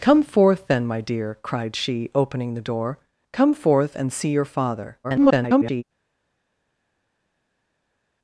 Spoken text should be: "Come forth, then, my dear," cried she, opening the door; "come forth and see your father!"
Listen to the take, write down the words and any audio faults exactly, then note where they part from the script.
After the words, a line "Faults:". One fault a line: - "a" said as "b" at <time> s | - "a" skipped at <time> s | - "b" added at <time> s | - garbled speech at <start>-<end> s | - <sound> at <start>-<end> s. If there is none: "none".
"Come forth, then, my dear," cried she, opening the door; "come forth and see your father!" [garbled]
Faults:
- garbled speech at 5.0-5.8 s